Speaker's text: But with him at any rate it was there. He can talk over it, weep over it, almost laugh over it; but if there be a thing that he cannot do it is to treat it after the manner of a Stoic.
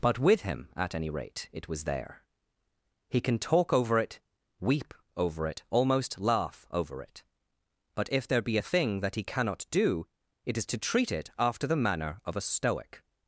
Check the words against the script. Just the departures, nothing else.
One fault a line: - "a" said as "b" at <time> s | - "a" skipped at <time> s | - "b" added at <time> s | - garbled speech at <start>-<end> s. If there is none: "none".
none